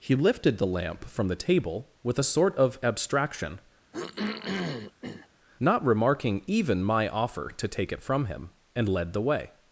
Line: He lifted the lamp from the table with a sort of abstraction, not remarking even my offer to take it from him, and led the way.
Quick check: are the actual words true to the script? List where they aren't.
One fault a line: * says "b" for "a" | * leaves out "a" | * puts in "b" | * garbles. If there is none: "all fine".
all fine